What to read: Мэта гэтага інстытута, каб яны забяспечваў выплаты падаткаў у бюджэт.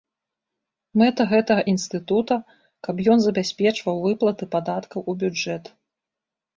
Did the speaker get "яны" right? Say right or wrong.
wrong